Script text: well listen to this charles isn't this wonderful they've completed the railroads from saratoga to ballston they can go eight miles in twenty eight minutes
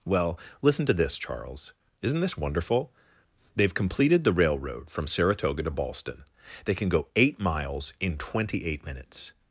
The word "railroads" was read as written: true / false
false